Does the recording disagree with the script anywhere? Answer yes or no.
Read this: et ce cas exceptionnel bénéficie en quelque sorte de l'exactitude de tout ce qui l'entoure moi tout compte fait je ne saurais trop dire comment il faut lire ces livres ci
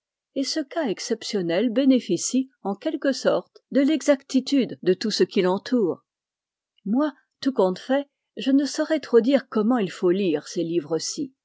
no